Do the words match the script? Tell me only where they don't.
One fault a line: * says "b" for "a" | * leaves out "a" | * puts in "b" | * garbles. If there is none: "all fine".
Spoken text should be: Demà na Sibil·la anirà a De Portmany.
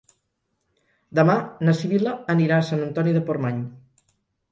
* puts in "Sant Antoni"